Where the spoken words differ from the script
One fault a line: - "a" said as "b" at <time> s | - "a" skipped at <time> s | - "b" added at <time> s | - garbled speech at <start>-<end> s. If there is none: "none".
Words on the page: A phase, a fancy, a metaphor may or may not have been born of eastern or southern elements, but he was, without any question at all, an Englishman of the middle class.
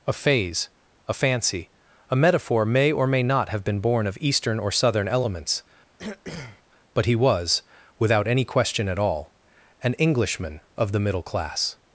none